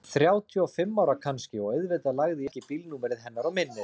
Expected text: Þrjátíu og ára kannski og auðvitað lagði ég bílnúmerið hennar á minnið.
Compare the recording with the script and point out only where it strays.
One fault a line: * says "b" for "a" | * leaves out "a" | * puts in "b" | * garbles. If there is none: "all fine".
* puts in "fimm"
* puts in "ekki"